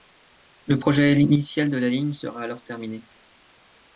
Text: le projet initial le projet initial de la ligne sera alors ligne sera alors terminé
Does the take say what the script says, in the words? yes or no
no